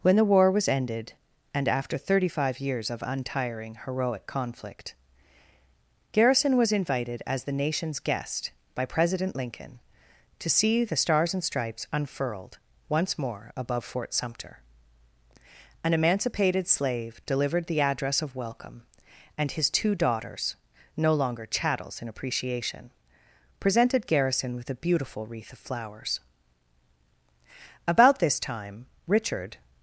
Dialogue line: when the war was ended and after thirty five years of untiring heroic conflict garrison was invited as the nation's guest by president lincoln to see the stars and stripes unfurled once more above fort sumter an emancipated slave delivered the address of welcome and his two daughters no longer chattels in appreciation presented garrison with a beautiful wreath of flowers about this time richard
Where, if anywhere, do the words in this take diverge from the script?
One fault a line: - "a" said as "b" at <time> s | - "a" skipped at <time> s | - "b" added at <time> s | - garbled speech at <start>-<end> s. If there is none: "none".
none